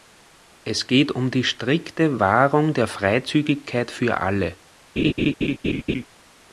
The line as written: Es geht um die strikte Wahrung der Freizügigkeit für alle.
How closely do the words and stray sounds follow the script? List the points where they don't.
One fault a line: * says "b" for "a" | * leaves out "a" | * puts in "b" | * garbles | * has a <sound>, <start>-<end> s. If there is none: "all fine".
* has a laugh, 5.0-6.1 s